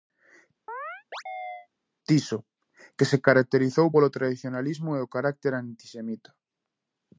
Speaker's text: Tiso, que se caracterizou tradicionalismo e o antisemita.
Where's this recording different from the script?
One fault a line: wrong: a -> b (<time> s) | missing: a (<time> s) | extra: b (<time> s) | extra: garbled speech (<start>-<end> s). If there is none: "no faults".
extra: polo (3.9 s)
extra: carácter (5.1 s)